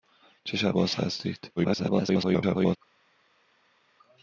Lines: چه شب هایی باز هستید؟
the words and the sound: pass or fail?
fail